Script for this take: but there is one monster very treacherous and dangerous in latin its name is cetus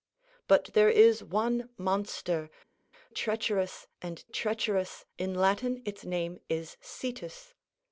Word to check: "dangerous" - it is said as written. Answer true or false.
false